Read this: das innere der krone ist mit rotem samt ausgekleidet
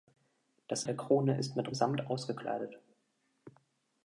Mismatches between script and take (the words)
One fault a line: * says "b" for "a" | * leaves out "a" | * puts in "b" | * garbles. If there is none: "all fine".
* leaves out "innere"
* leaves out "rotem"